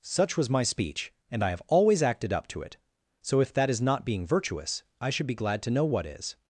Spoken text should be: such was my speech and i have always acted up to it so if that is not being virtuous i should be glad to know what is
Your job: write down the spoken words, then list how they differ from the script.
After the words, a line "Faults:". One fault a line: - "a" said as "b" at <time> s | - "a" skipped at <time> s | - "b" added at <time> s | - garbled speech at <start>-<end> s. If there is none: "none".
such was my speech and i have always acted up to it so if that is not being virtuous i should be glad to know what is
Faults:
none